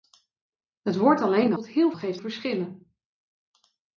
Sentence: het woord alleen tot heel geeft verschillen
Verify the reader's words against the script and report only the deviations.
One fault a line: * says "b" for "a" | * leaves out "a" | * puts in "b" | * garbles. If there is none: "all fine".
all fine